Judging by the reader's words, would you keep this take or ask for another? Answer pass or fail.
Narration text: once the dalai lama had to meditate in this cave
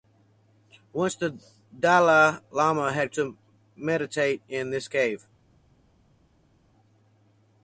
pass